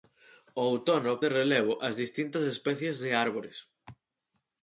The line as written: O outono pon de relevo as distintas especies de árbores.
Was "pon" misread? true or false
true